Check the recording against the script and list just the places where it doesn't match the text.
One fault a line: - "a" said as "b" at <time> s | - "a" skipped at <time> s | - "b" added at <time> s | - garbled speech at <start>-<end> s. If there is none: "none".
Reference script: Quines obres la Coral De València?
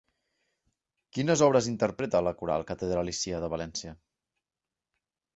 - "interpreta" added at 1.7 s
- "Catedralícia" added at 2.7 s